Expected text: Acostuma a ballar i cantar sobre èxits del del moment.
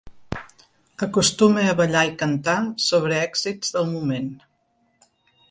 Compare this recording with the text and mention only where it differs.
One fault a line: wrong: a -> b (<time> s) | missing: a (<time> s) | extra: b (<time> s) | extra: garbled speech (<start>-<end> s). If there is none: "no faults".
missing: del (3.9 s)